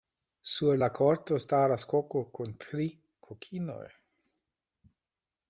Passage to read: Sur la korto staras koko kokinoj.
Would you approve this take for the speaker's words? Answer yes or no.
no